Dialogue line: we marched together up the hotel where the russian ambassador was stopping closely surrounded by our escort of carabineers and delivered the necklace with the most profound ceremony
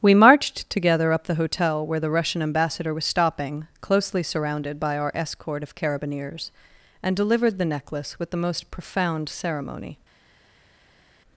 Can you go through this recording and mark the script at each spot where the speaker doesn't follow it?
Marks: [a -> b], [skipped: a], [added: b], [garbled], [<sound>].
we marched together up the hotel where the russian ambassador was stopping closely surrounded by our escort of carabineers and delivered the necklace with the most profound ceremony